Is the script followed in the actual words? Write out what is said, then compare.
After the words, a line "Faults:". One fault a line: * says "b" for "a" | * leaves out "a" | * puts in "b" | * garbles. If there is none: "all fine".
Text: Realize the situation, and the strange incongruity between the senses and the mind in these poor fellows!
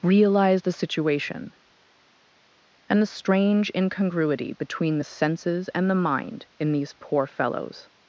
Realize the situation, and the strange incongruity between the senses and the mind in these poor fellows!
Faults:
all fine